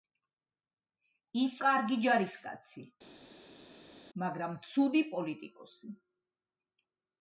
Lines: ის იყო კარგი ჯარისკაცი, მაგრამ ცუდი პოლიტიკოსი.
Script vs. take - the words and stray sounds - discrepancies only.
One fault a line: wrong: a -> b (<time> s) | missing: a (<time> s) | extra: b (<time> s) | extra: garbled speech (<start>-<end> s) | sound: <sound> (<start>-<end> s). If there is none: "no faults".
missing: იყო (1.6 s)